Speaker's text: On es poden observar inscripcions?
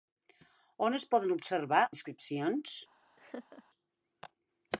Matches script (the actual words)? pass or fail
pass